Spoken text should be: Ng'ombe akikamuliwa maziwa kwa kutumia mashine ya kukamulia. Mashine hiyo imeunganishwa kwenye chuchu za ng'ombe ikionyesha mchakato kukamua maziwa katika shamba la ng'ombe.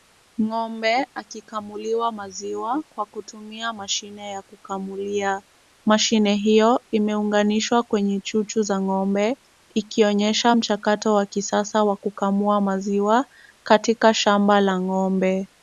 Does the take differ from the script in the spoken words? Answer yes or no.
yes